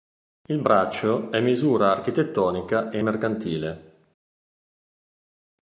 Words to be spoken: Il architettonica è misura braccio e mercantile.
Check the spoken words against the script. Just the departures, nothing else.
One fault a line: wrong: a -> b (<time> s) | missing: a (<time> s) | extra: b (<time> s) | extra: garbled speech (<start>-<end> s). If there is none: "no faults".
wrong: architettonica -> braccio (0.6 s)
wrong: braccio -> architettonica (1.9 s)